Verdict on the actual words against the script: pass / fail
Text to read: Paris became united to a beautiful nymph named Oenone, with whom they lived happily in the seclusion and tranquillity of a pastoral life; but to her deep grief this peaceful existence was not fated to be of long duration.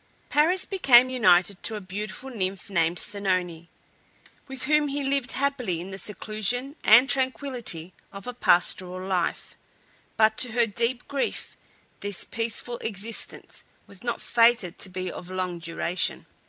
fail